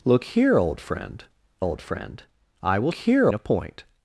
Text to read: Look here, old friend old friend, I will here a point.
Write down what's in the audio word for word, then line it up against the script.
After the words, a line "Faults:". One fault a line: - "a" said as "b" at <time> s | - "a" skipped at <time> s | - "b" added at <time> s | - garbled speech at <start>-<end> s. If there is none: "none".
Look here, old friend old friend, I will here a point.
Faults:
none